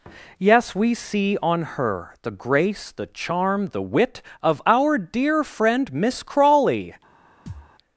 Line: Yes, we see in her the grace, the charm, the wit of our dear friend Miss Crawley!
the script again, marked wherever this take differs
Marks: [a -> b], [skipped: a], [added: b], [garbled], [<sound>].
Yes, we see [in -> on] her the grace, the charm, the wit of our dear friend Miss Crawley! [thud]